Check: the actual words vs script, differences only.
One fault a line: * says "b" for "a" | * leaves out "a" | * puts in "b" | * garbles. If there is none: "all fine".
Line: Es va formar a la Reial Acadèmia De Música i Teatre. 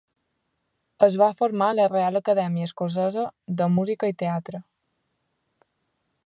* puts in "Escocesa"